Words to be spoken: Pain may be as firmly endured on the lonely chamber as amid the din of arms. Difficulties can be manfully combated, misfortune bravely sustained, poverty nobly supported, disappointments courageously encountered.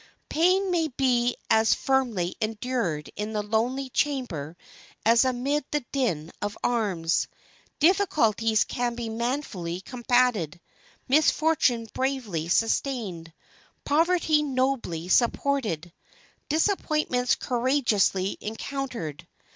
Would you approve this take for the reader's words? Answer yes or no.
no